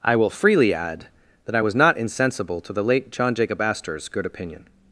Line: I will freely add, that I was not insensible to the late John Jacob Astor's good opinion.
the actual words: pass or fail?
pass